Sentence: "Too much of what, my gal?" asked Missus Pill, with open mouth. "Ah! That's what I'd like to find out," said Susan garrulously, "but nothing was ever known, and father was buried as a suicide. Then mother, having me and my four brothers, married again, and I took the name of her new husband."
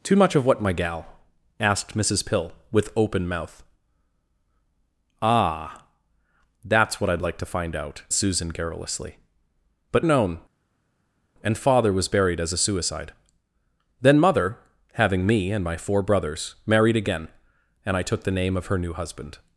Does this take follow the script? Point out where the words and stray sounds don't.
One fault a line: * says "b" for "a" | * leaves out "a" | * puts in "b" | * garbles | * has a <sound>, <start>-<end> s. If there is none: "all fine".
* leaves out "said"
* leaves out "nothing was ever"